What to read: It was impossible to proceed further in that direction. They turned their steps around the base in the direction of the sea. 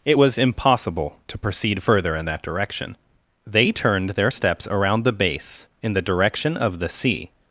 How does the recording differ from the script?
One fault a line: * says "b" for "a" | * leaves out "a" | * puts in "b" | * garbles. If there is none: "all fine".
all fine